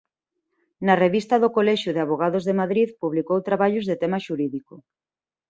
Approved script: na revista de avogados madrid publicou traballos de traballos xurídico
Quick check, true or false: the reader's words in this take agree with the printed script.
false